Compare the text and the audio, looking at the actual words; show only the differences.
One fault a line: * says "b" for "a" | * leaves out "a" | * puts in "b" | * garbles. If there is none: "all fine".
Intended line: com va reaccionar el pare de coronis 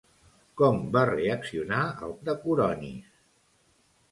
* leaves out "pare"